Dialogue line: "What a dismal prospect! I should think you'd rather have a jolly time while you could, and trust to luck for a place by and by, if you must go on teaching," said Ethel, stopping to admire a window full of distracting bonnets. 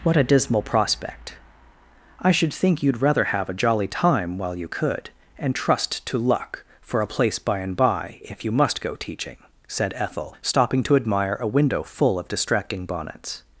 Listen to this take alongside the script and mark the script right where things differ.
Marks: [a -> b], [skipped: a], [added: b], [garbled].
"What a dismal prospect! I should think you'd rather have a jolly time while you could, and trust to luck for a place by and by, if you must go [skipped: on] teaching," said Ethel, stopping to admire a window full of distracting bonnets.